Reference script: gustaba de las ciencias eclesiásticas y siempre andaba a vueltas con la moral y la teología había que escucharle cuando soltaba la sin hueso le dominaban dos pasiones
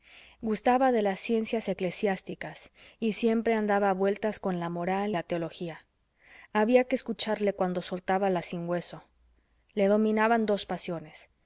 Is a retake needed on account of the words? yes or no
yes